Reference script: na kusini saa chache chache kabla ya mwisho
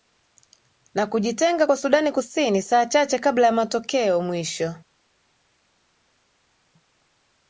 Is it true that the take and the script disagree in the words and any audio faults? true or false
true